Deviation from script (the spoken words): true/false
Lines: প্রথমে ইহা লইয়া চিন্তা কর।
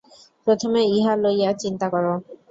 false